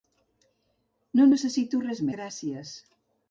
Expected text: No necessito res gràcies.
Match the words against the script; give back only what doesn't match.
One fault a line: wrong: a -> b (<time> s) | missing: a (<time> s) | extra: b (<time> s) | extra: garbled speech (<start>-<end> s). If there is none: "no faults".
no faults